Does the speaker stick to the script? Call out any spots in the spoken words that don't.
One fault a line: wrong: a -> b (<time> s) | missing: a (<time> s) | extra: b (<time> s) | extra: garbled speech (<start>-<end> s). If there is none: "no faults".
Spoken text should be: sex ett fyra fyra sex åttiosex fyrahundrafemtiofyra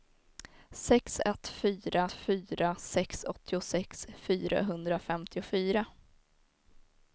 no faults